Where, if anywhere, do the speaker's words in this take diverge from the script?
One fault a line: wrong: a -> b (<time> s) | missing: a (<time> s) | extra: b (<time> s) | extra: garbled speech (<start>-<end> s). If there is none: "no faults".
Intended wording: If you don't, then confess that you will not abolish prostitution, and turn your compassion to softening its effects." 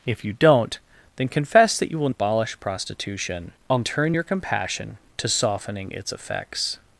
missing: not (2.1 s)